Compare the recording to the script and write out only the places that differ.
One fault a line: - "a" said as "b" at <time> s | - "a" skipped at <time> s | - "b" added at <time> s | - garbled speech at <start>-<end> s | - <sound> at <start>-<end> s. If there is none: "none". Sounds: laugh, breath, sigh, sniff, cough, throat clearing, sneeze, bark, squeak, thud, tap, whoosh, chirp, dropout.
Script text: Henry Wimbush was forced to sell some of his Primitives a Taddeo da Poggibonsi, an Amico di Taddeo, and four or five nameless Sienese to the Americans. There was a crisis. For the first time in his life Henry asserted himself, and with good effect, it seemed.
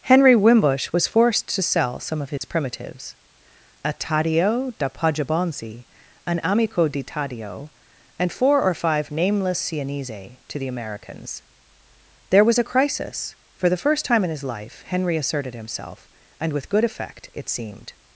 - dropout at 2.4-2.4 s